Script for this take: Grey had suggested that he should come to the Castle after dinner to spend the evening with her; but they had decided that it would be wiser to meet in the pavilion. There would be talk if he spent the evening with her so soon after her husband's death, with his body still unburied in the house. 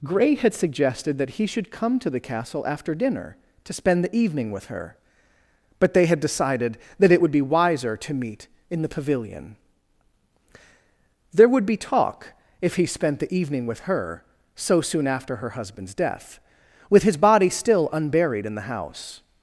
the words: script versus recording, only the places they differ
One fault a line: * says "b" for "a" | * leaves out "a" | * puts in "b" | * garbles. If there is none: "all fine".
all fine